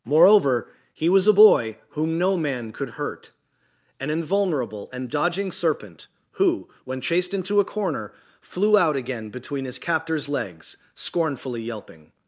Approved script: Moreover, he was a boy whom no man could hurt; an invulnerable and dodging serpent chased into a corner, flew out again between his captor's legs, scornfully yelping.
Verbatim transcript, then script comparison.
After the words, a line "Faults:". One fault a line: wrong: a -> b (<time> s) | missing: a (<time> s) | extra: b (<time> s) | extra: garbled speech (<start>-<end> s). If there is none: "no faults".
Moreover, he was a boy whom no man could hurt; an invulnerable and dodging serpent who, when chased into a corner, flew out again between his captor's legs, scornfully yelping.
Faults:
extra: who when (6.3 s)